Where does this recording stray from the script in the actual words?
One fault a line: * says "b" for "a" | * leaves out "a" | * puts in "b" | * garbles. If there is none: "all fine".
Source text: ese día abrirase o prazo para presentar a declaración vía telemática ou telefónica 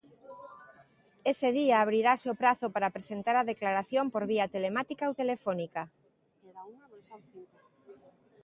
* puts in "por"